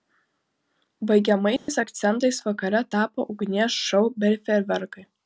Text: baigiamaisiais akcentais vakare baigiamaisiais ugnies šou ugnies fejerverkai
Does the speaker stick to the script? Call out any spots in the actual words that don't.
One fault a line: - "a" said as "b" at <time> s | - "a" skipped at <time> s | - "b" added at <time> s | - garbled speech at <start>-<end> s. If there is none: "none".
- "baigiamaisiais" said as "tapo" at 3.0 s
- "ugnies" said as "bei" at 4.2 s